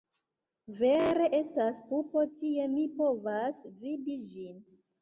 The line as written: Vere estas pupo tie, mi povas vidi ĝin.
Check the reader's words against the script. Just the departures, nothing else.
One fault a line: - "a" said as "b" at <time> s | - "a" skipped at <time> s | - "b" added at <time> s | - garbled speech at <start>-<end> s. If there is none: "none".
none